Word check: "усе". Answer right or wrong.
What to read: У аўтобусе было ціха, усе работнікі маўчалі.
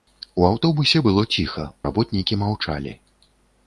wrong